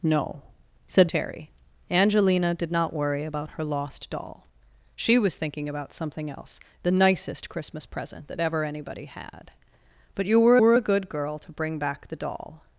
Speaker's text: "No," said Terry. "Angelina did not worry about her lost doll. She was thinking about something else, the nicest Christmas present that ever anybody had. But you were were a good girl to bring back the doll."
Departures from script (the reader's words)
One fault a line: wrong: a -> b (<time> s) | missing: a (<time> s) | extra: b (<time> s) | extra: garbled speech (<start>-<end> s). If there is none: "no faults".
no faults